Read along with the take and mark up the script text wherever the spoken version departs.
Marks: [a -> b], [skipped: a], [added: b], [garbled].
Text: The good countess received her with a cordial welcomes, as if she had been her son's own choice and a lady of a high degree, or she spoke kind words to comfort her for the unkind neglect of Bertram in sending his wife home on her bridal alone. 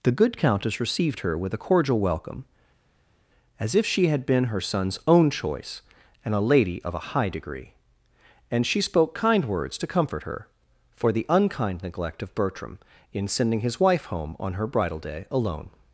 The good countess received her with a cordial [welcomes, -> welcome] as if she had been her son's own choice and a lady of a high degree, [or -> and] she spoke kind words to comfort her for the unkind neglect of Bertram in sending his wife home on her bridal [added: day] alone.